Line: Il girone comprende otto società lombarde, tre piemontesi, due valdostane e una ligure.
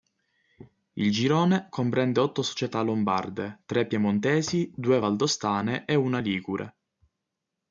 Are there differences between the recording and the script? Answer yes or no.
no